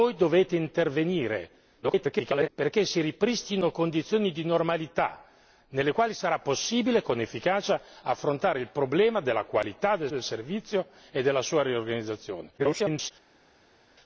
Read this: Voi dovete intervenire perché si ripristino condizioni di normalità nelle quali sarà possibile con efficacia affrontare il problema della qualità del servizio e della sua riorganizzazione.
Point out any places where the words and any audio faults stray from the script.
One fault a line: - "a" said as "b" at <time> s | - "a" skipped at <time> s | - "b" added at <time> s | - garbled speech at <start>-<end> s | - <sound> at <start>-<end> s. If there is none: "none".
- garbled speech at 1.8-2.5 s
- "del" added at 10.1 s
- garbled speech at 12.6-13.1 s